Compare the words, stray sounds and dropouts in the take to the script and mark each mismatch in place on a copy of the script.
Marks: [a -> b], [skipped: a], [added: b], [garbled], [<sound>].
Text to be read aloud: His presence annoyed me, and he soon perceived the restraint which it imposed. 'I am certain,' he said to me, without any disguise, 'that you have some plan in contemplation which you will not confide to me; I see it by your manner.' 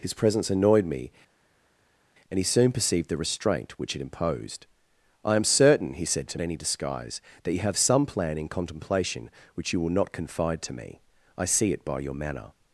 His presence annoyed me, and he soon perceived the restraint which it imposed. 'I am certain,' he said to [skipped: me, without] any disguise, 'that you have some plan in contemplation which you will not confide to me; I see it by your manner.'